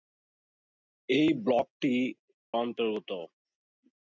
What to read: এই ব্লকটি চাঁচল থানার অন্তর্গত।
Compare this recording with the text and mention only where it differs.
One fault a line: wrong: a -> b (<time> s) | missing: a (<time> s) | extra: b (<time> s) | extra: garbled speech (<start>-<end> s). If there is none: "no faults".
missing: চাঁচল থানার (1.9 s)